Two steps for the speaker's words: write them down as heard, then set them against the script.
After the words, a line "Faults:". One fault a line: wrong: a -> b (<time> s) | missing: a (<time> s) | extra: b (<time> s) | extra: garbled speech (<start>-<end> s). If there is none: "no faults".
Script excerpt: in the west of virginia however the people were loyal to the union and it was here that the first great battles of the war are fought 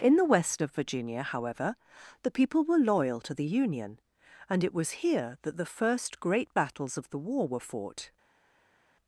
in the west of virginia however the people were loyal to the union and it was here that the first great battles of the war were fought
Faults:
wrong: are -> were (7.5 s)